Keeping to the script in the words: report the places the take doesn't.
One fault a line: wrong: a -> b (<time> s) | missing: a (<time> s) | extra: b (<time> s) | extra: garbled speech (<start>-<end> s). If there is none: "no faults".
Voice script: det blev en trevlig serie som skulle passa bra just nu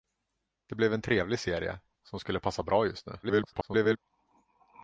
extra: garbled speech (3.2-4.0 s)